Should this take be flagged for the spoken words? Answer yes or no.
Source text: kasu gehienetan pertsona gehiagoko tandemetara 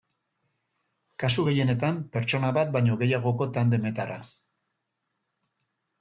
yes